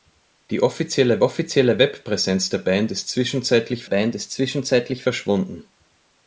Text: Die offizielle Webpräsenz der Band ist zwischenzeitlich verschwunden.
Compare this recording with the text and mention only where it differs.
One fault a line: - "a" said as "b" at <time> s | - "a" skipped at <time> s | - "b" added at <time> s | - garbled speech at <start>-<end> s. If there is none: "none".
- "offizielle" added at 1.2 s
- "Band ist zwischenzeitlich" added at 3.8 s